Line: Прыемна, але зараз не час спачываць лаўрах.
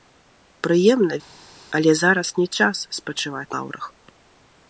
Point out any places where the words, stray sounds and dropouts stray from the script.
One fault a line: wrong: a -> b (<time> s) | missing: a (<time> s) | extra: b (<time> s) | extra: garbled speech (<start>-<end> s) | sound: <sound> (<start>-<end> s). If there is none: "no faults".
no faults